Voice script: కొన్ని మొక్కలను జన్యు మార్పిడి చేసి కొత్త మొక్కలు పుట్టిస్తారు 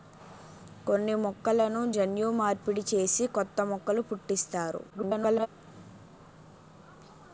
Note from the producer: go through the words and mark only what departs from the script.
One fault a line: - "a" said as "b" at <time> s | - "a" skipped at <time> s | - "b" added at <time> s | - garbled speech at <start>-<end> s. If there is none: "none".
- garbled speech at 4.9-5.5 s